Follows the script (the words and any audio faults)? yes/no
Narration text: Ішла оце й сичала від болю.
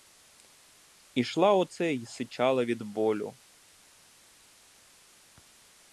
yes